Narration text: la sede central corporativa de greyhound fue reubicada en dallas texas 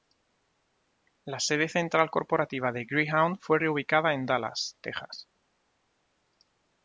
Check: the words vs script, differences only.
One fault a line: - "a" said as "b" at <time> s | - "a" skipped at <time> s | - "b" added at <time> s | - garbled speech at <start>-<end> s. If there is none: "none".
none